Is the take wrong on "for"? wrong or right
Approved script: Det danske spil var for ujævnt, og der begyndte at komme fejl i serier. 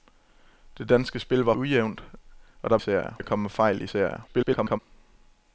wrong